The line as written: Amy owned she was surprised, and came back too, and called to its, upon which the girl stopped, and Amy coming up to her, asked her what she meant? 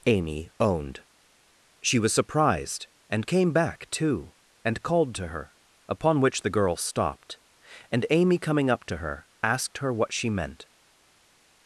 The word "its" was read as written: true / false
false